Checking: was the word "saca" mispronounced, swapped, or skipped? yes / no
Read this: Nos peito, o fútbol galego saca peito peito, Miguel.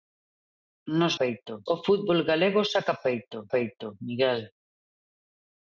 no